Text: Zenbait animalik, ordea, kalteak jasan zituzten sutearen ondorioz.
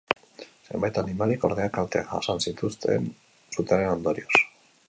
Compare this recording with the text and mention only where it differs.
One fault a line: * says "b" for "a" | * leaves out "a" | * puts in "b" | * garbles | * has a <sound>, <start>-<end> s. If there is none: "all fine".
all fine